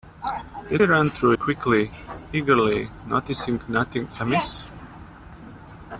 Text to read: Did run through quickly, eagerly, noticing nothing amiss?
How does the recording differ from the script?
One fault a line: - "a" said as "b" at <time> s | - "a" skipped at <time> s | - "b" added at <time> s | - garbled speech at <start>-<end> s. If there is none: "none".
none